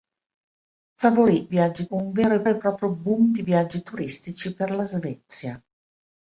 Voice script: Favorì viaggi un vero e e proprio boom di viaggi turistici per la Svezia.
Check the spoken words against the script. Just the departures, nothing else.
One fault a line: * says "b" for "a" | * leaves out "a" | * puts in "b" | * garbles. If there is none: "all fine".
all fine